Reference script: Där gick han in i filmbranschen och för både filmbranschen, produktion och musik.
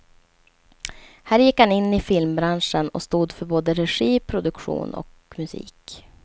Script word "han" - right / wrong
right